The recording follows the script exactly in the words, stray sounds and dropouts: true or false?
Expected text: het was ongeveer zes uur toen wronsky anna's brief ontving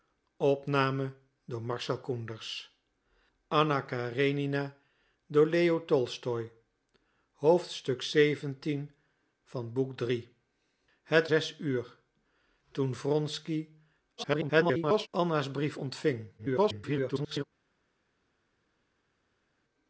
false